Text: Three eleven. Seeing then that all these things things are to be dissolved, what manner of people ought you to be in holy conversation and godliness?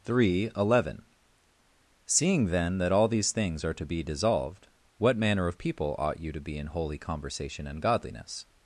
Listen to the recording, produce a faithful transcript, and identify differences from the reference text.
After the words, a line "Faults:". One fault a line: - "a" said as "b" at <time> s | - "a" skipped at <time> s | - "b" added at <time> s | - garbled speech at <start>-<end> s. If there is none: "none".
Three eleven. Seeing then that all these things are to be dissolved, what manner of people ought you to be in holy conversation and godliness?
Faults:
- "things" skipped at 3.6 s